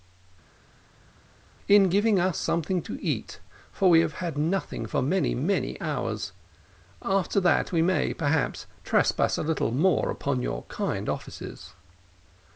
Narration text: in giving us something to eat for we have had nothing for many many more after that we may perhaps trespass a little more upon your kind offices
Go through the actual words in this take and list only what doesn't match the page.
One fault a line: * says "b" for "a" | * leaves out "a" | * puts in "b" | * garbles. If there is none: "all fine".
* says "hours" for "more"